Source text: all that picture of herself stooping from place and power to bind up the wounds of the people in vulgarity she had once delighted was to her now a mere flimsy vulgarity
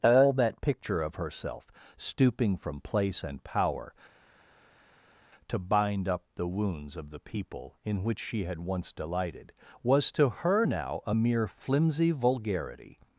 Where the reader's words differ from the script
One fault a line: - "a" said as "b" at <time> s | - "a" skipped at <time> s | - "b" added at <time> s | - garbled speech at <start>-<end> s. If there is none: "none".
- "vulgarity" said as "which" at 8.0 s